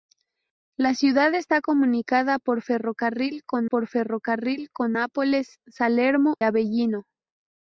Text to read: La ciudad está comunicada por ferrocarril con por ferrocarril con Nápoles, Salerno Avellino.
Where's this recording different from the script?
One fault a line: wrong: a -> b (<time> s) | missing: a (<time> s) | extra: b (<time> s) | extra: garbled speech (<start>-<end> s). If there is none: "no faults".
no faults